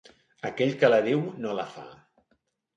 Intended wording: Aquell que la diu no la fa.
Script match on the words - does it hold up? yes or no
yes